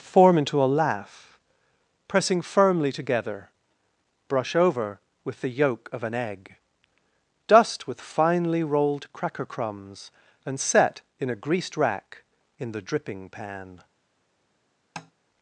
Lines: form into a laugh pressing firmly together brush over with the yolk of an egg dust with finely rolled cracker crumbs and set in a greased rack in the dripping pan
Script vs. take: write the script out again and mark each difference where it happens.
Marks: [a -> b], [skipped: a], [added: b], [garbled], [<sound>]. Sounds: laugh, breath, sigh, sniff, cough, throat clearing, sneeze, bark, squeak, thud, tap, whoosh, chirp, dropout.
form into a laugh pressing firmly together brush over with the yolk of an egg dust with finely rolled cracker crumbs and set in a greased rack in the dripping pan [tap]